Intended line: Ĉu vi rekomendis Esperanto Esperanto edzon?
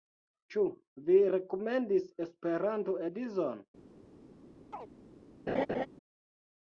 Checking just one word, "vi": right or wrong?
right